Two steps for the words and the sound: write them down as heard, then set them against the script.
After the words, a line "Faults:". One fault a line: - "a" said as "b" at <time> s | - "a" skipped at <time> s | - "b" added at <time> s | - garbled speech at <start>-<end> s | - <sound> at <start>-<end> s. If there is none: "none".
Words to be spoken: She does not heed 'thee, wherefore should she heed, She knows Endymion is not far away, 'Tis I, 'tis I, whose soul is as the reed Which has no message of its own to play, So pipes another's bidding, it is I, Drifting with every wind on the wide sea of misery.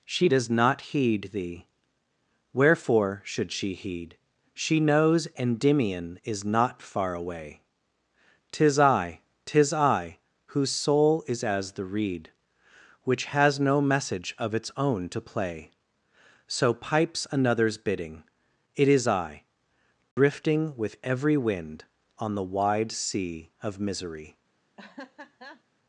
She does not heed 'thee, wherefore should she heed, She knows Endymion is not far away, 'Tis I, 'tis I, whose soul is as the reed Which has no message of its own to play, So pipes another's bidding, it is I, Drifting with every wind on the wide sea of misery.
Faults:
- dropout at 20.1-20.2 s
- laugh at 24.8-25.6 s